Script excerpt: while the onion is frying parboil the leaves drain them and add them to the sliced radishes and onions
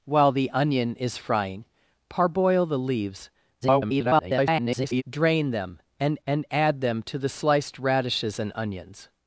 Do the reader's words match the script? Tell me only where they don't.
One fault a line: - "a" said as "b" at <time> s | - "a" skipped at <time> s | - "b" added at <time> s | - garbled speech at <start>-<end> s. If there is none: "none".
- garbled speech at 3.6-5.0 s
- "and" added at 6.3 s